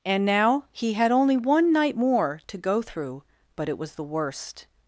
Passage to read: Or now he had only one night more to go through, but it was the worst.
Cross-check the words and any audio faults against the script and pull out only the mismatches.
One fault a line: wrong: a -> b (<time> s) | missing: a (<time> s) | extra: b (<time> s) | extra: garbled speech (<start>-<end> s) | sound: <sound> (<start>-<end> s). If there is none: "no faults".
wrong: Or -> And (0.0 s)